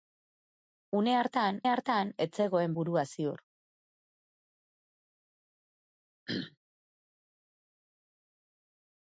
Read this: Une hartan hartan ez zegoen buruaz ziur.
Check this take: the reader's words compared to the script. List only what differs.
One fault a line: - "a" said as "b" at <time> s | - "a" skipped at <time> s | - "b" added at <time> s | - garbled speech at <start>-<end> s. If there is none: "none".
none